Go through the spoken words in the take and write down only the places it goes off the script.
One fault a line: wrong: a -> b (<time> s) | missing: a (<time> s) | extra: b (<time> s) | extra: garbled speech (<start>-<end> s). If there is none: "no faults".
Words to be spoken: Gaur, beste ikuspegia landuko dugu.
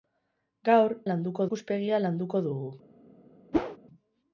wrong: beste -> landuko (1.1 s)